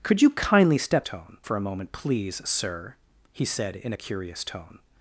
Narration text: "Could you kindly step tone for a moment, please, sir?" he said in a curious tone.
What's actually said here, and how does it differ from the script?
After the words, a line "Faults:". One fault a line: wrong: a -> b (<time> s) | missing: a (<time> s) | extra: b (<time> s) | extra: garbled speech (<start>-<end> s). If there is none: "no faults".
"Could you kindly step tone for a moment, please, sir?" he said in a curious tone.
Faults:
no faults